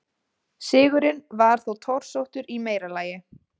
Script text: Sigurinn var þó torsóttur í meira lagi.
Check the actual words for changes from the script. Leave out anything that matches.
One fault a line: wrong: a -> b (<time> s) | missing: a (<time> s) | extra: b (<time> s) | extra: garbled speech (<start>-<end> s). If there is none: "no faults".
no faults